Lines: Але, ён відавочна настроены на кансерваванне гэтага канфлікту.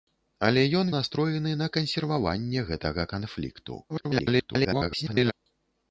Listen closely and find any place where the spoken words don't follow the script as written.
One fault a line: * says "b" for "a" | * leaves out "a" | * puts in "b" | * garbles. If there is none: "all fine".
* leaves out "відавочна"
* garbles